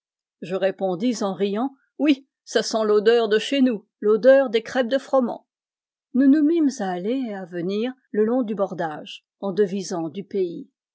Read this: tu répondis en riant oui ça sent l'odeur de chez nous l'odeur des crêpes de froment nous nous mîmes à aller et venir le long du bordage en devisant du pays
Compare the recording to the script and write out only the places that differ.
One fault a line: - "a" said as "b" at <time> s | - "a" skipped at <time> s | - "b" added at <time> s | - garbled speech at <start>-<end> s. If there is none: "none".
- "tu" said as "je" at 0.4 s
- "à" added at 7.3 s